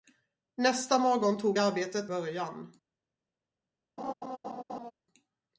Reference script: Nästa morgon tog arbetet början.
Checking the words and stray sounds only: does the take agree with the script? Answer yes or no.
no